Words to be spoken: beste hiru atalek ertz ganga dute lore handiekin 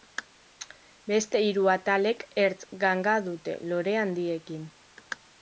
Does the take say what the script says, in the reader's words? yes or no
yes